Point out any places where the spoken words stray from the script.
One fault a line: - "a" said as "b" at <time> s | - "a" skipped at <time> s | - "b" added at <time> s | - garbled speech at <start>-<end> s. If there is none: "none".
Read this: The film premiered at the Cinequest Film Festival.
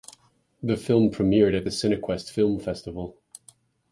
none